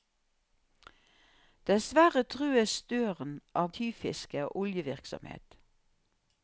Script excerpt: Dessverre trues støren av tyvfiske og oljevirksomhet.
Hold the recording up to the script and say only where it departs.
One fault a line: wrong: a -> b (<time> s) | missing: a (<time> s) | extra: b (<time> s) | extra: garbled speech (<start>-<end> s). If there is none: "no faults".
no faults